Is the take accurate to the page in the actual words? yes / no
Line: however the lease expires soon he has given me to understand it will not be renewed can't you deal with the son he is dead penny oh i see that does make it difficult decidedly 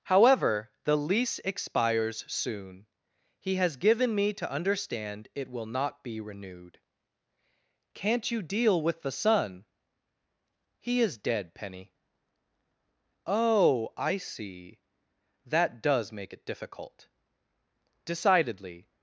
yes